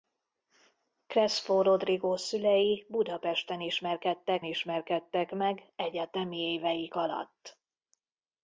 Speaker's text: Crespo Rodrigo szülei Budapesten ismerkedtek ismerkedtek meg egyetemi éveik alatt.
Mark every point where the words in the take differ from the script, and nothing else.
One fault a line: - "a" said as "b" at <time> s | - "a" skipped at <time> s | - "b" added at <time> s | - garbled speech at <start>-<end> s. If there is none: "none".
none